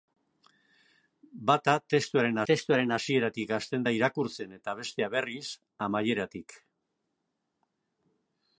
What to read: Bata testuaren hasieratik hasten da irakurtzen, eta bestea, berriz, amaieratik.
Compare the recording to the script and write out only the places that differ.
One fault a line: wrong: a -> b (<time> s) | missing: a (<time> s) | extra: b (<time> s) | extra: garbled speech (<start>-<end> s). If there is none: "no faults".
extra: testuaren (2.5 s)